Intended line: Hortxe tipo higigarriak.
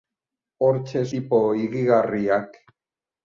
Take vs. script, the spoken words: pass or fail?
pass